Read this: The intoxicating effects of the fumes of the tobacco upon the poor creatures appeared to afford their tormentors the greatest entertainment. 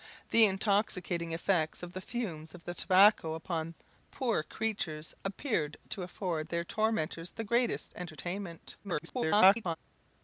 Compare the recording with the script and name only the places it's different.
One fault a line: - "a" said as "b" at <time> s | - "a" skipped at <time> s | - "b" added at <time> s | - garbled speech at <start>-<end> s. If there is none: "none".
- garbled speech at 8.8-9.8 s